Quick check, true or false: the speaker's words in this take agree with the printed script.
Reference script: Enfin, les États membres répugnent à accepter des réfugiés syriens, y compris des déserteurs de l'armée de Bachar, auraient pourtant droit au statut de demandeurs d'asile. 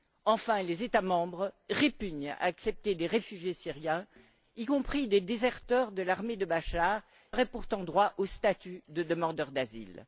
true